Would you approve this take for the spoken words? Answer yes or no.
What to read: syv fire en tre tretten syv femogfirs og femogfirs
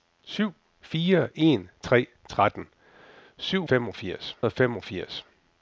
yes